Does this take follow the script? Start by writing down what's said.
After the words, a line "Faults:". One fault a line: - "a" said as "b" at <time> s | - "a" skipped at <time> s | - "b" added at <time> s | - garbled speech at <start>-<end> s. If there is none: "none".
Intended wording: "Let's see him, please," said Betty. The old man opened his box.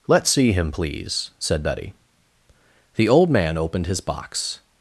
"Let's see him, please," said Betty. The old man opened his box.
Faults:
none